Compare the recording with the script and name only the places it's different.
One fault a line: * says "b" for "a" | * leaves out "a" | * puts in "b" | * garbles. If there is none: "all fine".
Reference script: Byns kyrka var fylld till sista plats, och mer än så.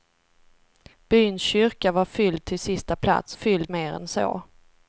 * says "fylld" for "och"